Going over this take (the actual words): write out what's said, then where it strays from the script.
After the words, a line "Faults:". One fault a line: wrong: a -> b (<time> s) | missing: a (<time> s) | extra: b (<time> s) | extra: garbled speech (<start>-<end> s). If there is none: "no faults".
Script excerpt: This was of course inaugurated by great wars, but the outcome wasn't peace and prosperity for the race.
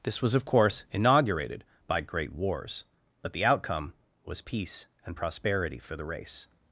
This was of course inaugurated by great wars, but the outcome was peace and prosperity for the race.
Faults:
wrong: wasn't -> was (4.2 s)